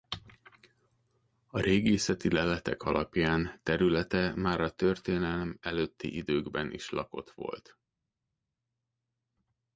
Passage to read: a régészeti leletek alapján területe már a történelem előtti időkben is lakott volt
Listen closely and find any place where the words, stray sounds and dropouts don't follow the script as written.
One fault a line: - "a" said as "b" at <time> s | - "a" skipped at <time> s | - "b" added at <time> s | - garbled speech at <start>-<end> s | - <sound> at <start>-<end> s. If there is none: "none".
none